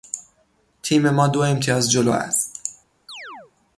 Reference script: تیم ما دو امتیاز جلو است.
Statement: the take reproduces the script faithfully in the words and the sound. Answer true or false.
false